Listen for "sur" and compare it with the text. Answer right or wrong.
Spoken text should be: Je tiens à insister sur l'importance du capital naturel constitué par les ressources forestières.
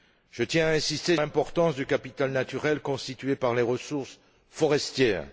wrong